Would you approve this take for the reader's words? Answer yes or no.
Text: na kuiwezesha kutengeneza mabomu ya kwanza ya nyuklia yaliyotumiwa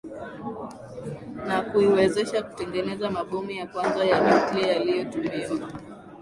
yes